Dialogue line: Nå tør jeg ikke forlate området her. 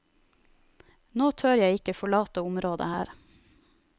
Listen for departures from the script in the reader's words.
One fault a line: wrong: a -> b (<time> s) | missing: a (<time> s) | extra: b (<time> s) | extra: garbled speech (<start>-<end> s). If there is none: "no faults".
no faults